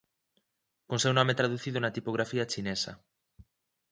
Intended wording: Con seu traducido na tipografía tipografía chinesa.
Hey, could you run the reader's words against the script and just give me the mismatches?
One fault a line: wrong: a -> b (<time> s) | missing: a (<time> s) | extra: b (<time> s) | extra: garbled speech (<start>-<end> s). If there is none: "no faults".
extra: nome (1.2 s)
missing: tipografía (2.5 s)